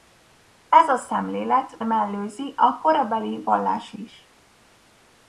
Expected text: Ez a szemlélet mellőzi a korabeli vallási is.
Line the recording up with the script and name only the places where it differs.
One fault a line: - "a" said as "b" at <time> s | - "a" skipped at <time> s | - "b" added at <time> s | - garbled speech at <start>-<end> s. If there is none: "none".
none